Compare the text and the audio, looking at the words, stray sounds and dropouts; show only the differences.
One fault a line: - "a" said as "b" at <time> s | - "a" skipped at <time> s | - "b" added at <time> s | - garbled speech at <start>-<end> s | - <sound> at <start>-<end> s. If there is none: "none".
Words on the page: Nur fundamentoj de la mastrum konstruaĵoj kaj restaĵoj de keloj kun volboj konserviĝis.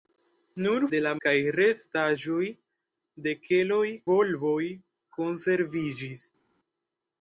- "fundamentoj" skipped at 0.8 s
- "mastrum konstruaĵoj" skipped at 1.1 s
- "kun" skipped at 3.8 s